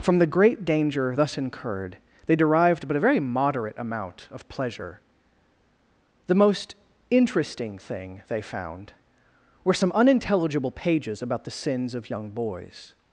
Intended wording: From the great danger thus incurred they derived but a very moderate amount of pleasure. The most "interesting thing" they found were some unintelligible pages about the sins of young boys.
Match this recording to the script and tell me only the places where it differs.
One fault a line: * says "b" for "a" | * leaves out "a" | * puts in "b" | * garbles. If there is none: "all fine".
all fine